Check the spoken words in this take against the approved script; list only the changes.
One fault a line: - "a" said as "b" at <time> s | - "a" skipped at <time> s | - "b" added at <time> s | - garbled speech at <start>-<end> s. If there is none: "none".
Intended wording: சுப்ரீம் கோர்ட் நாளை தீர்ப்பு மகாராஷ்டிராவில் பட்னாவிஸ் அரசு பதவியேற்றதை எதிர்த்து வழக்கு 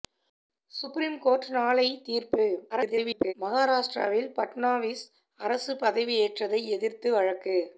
- garbled speech at 2.7-3.3 s